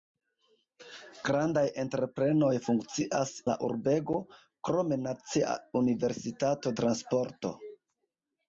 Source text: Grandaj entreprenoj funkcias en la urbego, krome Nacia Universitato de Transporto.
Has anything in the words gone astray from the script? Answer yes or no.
yes